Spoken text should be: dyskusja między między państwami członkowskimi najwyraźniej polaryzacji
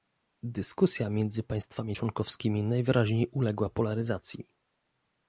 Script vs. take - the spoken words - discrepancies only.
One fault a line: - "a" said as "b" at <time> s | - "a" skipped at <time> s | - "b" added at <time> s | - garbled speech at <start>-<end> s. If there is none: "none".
- "między" skipped at 1.4 s
- "uległa" added at 3.3 s